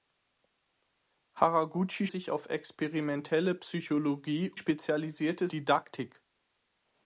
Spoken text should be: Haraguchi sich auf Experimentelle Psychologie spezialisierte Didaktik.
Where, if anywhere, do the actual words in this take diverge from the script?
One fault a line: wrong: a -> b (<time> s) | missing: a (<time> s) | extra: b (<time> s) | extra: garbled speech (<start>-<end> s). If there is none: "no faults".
no faults